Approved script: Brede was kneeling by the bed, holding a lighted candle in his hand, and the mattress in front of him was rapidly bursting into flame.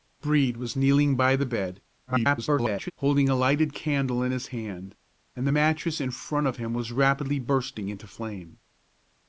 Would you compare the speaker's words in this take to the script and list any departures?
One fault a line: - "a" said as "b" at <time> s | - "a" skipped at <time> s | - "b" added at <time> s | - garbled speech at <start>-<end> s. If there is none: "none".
- garbled speech at 2.1-2.9 s